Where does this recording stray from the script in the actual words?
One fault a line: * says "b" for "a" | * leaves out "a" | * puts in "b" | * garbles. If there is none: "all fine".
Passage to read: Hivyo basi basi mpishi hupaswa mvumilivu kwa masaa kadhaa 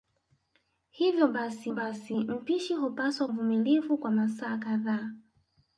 all fine